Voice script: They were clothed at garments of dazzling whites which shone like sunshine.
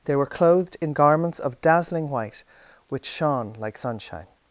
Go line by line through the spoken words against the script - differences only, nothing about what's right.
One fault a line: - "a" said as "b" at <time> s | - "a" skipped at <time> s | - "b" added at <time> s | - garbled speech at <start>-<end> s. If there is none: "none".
- "at" said as "in" at 0.8 s
- "whites" said as "white" at 2.1 s